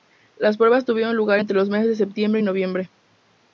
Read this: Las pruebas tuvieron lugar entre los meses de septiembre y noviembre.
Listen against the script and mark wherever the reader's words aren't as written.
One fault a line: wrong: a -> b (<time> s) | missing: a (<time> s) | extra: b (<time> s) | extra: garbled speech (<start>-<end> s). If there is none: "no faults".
no faults